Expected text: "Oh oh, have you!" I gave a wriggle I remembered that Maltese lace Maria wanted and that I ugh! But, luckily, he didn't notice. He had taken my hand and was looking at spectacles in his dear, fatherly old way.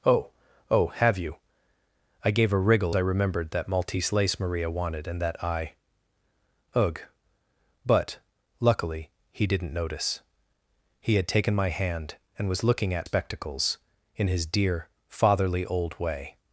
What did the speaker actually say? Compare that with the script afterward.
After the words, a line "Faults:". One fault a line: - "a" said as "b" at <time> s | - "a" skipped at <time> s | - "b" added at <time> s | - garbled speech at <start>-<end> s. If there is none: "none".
"Oh oh, have you!" I gave a wriggle I remembered that Maltese lace Maria wanted and that I ugh! But, luckily, he didn't notice. He had taken my hand and was looking at spectacles in his dear, fatherly old way.
Faults:
none